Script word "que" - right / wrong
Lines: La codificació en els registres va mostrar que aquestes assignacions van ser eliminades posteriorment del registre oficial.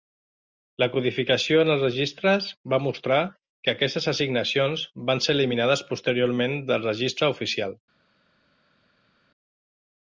right